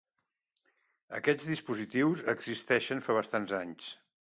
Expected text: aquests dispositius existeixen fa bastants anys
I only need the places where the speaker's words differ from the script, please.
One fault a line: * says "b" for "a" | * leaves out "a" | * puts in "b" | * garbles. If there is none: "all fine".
all fine